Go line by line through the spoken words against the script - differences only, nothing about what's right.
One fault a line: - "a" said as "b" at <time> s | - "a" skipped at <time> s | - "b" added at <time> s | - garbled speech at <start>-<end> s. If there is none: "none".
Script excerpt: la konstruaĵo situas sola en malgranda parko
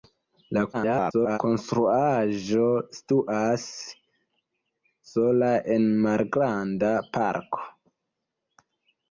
- garbled speech at 0.7-1.4 s